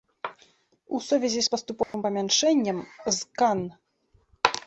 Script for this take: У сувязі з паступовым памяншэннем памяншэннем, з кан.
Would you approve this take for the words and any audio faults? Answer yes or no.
no